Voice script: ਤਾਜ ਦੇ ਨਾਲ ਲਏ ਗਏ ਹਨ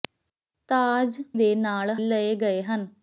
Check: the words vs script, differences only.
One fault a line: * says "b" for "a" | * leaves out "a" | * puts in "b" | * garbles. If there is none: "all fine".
all fine